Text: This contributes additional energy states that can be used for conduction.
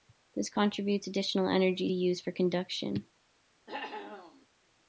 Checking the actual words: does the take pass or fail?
fail